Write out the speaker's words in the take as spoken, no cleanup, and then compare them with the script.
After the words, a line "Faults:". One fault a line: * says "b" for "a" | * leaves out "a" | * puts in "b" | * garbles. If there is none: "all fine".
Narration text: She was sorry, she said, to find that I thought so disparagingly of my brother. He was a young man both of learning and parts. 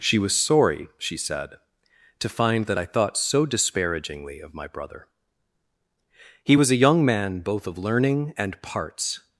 She was sorry, she said, to find that I thought so disparagingly of my brother. He was a young man both of learning and parts.
Faults:
all fine